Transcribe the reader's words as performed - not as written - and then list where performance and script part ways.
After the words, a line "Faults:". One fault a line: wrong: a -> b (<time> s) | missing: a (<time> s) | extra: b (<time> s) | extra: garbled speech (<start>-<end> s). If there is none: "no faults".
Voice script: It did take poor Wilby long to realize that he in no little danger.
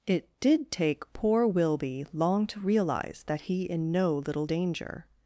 It did take poor Wilby long to realize that he in no little danger.
Faults:
no faults